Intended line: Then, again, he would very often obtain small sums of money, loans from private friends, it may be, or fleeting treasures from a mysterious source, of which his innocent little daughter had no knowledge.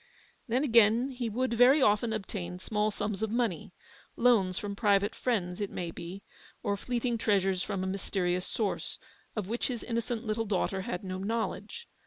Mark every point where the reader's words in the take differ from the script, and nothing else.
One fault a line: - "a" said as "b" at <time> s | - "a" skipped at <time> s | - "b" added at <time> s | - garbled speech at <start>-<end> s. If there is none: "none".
none